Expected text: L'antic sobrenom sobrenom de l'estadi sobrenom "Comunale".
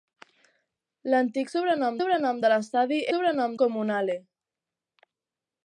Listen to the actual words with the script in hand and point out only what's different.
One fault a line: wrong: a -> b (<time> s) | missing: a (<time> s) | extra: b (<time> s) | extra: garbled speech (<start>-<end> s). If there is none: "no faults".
no faults